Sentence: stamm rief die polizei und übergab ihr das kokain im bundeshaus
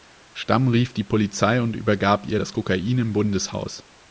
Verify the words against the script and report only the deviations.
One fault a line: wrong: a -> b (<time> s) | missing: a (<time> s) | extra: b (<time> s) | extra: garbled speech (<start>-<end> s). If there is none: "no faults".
no faults